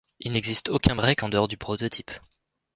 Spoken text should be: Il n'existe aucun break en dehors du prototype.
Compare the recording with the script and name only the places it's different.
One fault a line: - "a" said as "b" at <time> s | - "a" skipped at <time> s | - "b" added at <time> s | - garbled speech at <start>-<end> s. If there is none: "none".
none